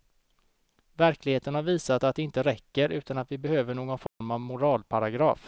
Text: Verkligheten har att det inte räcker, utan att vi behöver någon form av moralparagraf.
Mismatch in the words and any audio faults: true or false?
true